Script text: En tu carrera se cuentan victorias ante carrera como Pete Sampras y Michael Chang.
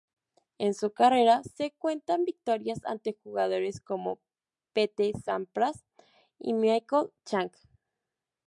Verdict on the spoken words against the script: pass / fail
fail